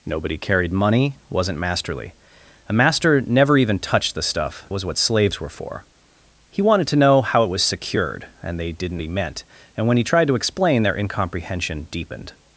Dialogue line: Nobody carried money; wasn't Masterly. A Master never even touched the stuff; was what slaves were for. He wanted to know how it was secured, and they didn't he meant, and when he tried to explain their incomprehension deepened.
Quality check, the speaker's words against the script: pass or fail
pass